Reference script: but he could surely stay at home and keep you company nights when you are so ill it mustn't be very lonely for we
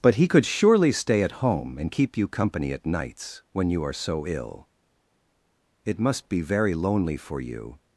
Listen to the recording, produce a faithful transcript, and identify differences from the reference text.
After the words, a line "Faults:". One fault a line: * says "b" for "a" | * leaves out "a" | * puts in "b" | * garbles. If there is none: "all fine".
but he could surely stay at home and keep you company at nights when you are so ill it must be very lonely for you
Faults:
* puts in "at"
* says "must" for "mustn't"
* says "you" for "we"